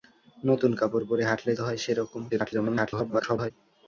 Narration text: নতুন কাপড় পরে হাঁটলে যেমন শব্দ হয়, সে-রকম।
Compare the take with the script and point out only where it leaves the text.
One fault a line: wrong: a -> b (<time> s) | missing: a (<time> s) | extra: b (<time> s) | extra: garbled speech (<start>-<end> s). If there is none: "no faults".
missing: যেমন শব্দ (1.5 s)
extra: garbled speech (2.3-3.5 s)